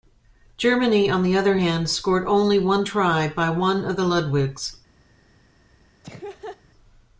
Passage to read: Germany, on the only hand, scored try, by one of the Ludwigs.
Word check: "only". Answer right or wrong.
wrong